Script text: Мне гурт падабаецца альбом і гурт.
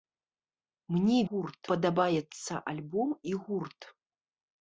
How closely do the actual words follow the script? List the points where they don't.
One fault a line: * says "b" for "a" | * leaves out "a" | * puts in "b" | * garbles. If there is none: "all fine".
all fine